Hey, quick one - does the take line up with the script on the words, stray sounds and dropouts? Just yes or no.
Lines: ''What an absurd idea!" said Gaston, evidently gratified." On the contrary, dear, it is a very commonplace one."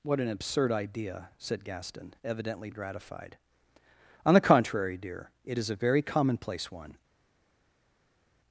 yes